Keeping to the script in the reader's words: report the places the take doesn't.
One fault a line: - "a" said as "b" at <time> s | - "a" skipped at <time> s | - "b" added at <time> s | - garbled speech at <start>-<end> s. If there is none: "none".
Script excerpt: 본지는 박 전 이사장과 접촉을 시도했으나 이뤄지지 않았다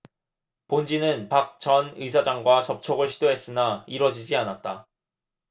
none